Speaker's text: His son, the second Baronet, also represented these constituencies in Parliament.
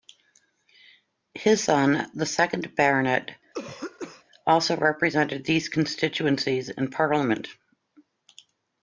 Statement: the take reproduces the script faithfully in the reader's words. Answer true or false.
true